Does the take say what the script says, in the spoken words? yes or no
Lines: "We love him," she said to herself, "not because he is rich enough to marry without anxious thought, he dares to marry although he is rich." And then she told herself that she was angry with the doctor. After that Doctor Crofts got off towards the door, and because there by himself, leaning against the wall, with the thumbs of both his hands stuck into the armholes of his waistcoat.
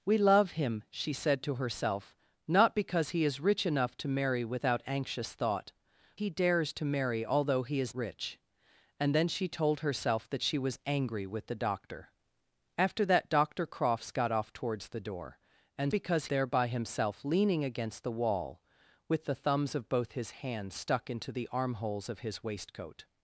yes